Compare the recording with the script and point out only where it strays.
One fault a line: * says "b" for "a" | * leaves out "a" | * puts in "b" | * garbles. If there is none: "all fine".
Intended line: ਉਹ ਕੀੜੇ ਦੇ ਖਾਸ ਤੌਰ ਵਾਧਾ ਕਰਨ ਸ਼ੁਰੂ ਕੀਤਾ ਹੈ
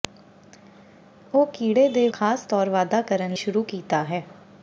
all fine